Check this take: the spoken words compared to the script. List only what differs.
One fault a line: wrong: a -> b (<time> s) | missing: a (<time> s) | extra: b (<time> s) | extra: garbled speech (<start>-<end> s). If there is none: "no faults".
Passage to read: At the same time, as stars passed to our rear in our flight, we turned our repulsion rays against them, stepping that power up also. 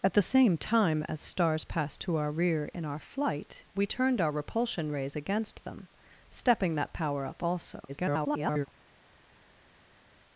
extra: garbled speech (7.9-8.7 s)